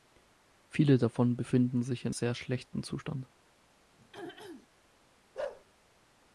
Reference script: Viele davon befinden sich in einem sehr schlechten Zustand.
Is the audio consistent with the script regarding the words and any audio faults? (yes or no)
no